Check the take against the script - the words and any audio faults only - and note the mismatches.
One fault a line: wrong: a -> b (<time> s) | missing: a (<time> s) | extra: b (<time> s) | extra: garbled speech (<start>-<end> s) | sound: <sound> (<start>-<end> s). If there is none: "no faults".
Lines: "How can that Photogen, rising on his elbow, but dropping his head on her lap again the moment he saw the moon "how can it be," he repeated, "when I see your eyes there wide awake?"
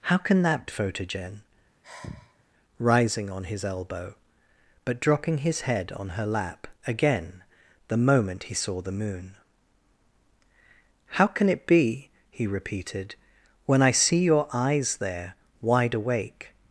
sound: sigh (1.8-2.4 s)